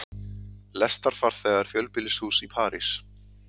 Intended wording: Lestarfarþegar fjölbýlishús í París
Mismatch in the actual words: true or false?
false